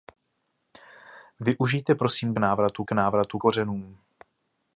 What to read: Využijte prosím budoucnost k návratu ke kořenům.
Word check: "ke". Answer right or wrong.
wrong